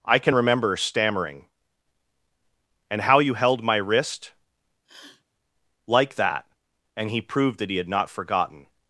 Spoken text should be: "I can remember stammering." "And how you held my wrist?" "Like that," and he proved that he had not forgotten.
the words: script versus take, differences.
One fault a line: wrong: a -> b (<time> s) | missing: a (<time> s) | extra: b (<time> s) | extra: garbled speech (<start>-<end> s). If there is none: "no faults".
no faults